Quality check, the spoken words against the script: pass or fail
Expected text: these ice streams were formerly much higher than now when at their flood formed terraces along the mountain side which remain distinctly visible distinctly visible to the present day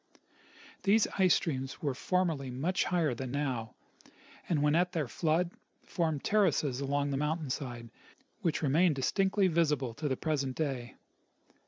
fail